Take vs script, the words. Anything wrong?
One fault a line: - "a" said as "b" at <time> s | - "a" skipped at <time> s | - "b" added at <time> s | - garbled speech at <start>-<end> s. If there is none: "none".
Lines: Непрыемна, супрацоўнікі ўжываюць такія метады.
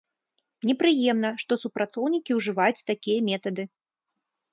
- "што" added at 1.4 s